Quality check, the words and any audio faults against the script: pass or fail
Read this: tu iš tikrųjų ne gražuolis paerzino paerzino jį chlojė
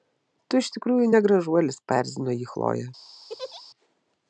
fail